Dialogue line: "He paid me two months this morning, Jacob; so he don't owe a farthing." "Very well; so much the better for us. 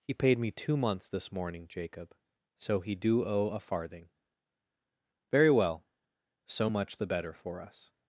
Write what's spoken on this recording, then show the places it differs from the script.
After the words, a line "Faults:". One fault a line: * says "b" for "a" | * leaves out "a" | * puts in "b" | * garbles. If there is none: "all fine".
"He paid me two months this morning, Jacob; so he do owe a farthing." "Very well; so much the better for us.
Faults:
* says "do" for "don't"